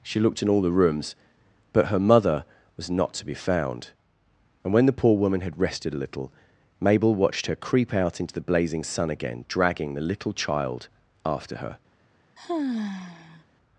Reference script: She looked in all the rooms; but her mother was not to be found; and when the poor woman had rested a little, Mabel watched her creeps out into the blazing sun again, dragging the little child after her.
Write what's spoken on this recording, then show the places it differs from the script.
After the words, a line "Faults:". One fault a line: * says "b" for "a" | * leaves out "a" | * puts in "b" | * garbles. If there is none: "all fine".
She looked in all the rooms; but her mother was not to be found; and when the poor woman had rested a little, Mabel watched her creep out into the blazing sun again, dragging the little child after her.
Faults:
* says "creep" for "creeps"